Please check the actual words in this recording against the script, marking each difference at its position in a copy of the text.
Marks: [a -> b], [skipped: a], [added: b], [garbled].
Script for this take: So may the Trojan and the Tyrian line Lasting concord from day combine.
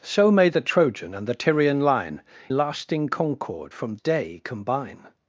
So may the Trojan and the Tyrian line Lasting concord from day combine.